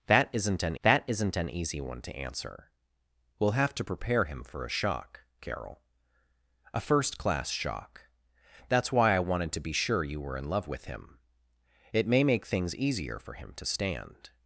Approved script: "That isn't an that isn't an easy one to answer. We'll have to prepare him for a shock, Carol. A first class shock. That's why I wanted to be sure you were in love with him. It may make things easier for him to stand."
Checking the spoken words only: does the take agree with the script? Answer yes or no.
yes